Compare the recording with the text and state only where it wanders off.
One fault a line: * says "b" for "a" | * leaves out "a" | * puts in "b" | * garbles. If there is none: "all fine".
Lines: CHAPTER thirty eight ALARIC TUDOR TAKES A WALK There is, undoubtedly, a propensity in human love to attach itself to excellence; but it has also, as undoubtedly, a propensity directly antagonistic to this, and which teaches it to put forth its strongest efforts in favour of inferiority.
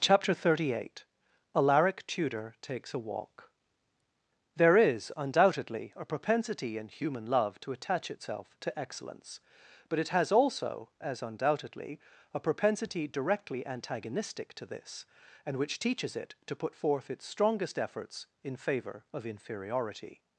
all fine